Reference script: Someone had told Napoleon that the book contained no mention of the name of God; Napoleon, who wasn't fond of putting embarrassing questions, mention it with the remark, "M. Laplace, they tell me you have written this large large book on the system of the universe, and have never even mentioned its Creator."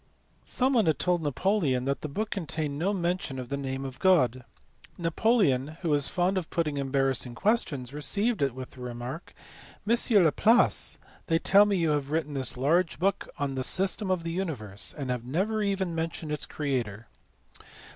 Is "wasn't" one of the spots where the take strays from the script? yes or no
yes